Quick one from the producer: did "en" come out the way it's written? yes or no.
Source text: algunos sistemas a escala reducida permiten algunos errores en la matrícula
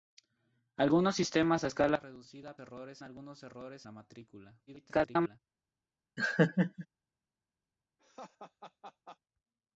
no